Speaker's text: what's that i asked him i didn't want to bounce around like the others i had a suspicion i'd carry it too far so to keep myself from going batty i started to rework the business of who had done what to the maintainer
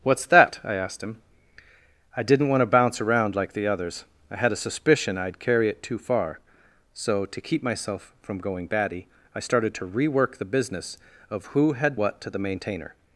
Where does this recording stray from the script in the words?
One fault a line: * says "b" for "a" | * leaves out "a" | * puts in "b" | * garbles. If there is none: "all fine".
* leaves out "done"